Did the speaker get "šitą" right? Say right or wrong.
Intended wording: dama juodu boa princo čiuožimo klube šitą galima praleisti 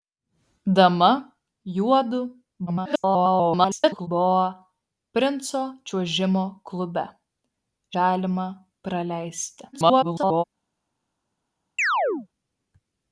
wrong